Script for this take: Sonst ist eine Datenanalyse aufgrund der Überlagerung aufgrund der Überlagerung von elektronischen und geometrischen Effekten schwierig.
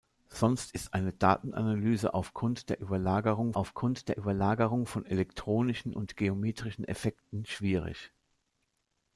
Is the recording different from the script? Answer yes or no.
no